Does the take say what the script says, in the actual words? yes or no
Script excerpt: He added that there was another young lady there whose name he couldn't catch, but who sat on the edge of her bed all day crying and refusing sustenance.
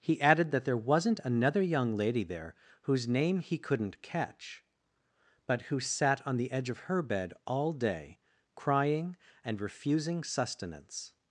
no